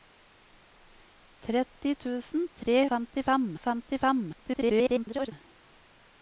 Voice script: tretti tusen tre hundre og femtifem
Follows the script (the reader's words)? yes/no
no